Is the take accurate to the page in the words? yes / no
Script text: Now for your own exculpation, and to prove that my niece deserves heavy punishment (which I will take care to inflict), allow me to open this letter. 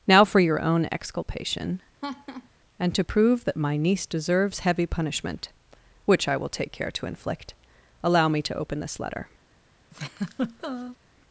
yes